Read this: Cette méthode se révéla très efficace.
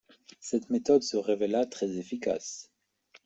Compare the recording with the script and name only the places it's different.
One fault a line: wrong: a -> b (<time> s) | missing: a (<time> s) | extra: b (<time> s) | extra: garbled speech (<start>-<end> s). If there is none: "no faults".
no faults